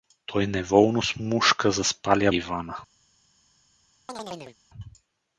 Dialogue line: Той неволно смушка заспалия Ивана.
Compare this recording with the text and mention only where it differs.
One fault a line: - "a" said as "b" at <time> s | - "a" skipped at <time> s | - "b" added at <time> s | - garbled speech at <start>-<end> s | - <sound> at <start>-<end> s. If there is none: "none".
- chirp at 4.1-4.6 s